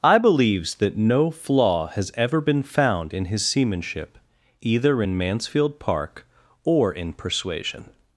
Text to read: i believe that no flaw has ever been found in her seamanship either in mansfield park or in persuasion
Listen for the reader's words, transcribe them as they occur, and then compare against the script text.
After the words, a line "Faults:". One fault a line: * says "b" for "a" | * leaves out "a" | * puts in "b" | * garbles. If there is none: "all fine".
i believes that no flaw has ever been found in his seamanship either in mansfield park or in persuasion
Faults:
* says "believes" for "believe"
* says "his" for "her"